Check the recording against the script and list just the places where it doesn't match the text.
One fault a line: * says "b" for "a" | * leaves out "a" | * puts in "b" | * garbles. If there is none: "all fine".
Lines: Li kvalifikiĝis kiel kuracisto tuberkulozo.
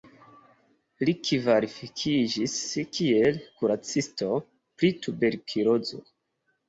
* puts in "pri"